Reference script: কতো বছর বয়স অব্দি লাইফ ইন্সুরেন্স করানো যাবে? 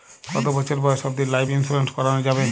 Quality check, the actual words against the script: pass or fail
pass